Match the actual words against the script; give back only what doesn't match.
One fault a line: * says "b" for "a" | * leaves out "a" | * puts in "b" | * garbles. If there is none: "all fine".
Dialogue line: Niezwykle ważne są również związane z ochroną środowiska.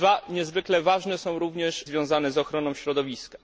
all fine